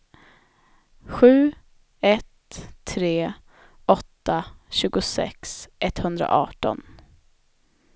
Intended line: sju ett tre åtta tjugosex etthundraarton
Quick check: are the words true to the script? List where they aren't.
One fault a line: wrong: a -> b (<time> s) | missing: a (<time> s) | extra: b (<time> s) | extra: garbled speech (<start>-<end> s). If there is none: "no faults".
no faults